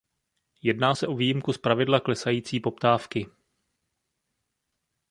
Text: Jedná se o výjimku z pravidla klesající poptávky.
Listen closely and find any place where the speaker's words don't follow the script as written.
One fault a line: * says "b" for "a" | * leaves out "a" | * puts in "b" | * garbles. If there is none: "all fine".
all fine